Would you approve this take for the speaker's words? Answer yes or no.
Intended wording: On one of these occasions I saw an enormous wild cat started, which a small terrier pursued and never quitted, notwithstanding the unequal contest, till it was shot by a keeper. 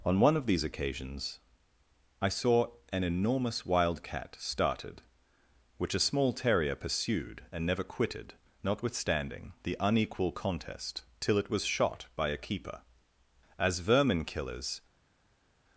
no